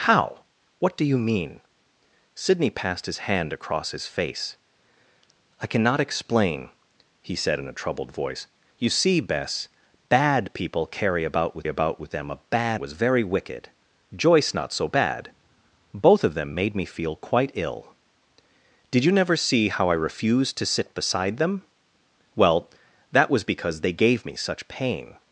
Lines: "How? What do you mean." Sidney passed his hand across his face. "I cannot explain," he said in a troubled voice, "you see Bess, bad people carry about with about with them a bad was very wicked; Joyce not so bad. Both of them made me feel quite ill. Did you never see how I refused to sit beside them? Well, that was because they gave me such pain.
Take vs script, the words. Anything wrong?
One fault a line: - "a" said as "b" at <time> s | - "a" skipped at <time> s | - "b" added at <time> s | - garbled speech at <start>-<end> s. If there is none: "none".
none